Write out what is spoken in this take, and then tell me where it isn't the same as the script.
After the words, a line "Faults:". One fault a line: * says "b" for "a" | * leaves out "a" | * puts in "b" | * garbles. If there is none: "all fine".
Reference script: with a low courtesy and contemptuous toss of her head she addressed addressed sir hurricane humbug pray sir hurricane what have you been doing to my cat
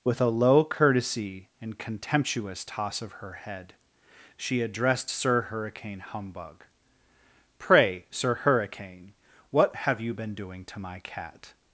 with a low courtesy and contemptuous toss of her head she addressed sir hurricane humbug pray sir hurricane what have you been doing to my cat
Faults:
* leaves out "addressed"